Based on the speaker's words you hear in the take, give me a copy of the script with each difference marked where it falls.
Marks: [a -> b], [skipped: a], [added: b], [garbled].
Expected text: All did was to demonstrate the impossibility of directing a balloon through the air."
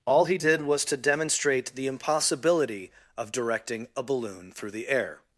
All [added: he] did was to demonstrate the impossibility of directing a balloon through the air."